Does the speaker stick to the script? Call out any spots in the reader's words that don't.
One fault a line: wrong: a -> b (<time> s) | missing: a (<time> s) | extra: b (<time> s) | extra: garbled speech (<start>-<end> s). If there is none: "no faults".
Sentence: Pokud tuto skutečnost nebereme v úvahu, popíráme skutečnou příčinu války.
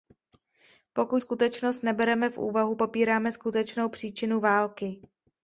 missing: tuto (1.2 s)